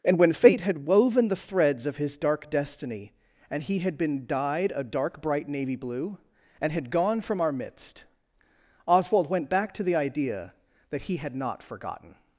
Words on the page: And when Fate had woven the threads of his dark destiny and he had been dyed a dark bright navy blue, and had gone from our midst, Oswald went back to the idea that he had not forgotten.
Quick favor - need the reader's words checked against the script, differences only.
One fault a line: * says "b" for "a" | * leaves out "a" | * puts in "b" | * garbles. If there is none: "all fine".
all fine